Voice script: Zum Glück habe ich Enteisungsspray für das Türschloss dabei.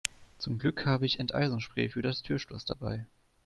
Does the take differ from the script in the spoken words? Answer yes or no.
no